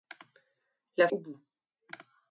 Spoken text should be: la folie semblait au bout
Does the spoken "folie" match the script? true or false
false